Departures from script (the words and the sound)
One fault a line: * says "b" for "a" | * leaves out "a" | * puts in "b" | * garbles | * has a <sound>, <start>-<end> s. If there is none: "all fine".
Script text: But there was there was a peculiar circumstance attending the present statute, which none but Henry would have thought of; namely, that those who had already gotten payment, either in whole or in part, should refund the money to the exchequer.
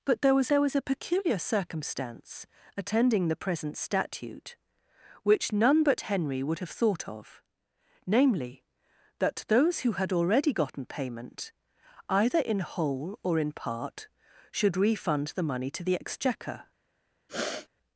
* has a sniff, 17.3-17.7 s